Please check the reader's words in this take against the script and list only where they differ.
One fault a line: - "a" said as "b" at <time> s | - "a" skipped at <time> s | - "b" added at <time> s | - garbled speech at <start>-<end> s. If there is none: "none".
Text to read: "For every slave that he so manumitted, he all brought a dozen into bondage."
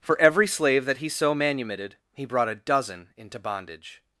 - "all" skipped at 2.2 s